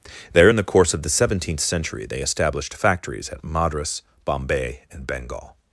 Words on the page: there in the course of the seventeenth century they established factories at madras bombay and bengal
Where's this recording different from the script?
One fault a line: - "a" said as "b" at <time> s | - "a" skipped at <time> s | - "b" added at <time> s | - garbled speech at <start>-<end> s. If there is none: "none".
none